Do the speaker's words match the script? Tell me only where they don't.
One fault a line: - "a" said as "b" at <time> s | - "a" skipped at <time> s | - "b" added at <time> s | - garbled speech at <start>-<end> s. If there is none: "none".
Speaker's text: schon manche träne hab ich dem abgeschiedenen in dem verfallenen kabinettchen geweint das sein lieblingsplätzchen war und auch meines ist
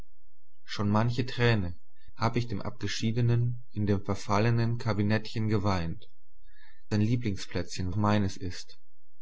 - "das" skipped at 6.1 s
- "war und auch" skipped at 7.9 s